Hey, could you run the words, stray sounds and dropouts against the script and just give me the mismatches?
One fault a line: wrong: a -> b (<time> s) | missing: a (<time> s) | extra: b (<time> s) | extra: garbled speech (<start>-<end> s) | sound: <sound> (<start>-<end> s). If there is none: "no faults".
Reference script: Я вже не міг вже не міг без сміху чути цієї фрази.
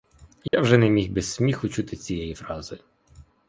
sound: dropout (0.5-0.5 s)
missing: вже не міг (1.1 s)